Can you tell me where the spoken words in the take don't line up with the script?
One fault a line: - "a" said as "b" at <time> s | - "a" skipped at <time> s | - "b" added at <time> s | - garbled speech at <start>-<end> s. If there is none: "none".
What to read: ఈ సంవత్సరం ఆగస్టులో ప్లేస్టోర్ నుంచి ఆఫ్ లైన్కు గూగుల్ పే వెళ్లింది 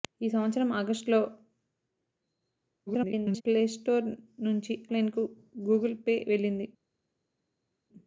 - garbled speech at 2.9-3.4 s
- "ఆఫ్" skipped at 4.7 s